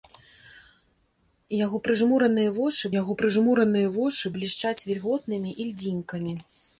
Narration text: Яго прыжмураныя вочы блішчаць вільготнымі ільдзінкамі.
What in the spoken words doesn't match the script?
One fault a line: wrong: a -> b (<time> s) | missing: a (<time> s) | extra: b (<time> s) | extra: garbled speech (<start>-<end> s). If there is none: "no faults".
extra: яго прыжмураныя вочы (3.0 s)